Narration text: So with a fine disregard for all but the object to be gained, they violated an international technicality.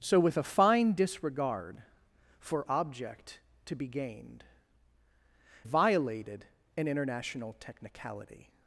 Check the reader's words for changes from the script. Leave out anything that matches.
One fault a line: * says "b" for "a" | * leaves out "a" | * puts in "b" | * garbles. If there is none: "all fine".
* leaves out "all but the"
* leaves out "they"